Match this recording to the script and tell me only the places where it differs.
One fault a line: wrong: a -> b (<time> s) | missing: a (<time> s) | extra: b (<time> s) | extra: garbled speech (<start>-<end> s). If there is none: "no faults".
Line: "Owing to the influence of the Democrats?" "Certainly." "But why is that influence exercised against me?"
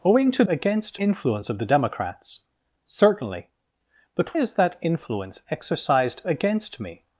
wrong: the -> against (0.5 s)
missing: why (4.4 s)